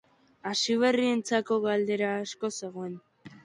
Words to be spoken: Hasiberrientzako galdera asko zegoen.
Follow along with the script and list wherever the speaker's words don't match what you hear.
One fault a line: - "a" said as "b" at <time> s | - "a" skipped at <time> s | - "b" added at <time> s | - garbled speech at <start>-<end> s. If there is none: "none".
none